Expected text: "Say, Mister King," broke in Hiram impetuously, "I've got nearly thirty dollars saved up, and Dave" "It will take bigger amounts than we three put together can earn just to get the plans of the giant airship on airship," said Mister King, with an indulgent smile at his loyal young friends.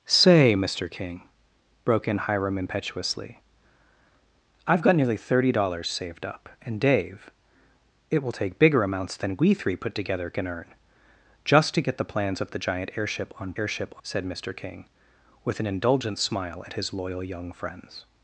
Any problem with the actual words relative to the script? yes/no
no